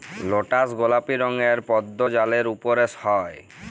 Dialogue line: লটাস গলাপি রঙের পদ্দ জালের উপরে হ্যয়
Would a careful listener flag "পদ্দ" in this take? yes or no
no